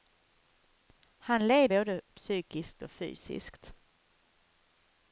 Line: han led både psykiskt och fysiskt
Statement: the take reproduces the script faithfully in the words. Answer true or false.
true